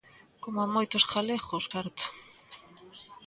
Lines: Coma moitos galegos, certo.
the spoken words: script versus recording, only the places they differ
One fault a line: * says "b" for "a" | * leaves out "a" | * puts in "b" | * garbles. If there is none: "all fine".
all fine